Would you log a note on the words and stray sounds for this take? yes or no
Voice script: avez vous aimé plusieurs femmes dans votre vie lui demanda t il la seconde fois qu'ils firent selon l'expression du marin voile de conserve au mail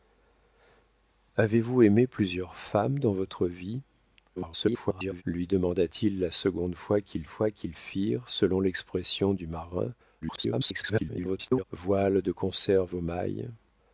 yes